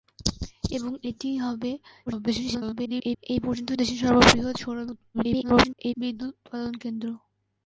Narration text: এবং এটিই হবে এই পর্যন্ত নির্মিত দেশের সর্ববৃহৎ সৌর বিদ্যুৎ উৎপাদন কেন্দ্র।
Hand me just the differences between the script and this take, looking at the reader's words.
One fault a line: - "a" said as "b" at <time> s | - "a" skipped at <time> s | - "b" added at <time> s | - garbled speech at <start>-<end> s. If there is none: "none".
- garbled speech at 2.1-3.2 s
- "নির্মিত" skipped at 3.7 s
- garbled speech at 5.1-5.9 s